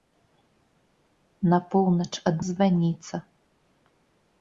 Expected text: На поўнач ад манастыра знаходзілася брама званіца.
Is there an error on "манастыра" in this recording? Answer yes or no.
yes